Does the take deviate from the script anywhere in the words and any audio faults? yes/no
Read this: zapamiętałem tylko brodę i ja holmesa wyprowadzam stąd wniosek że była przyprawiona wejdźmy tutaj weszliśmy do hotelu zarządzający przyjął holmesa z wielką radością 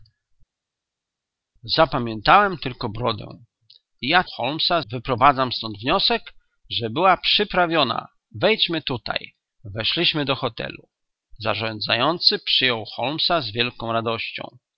no